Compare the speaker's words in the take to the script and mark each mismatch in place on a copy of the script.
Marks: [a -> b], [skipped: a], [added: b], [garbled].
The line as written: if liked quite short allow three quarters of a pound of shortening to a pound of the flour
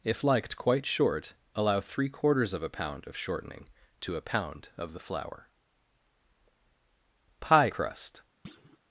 if liked quite short allow three quarters of a pound of shortening to a pound of the flour [added: pie crust]